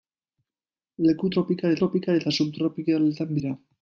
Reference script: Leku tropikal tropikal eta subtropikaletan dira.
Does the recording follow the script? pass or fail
pass